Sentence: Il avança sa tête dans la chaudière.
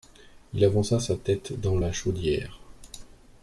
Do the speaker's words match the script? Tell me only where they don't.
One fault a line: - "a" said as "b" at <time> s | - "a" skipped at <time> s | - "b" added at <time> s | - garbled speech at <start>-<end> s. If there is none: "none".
none